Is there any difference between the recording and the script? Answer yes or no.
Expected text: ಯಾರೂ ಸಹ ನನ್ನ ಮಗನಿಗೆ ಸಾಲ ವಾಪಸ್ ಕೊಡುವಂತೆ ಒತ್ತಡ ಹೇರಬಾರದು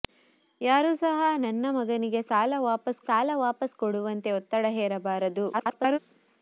yes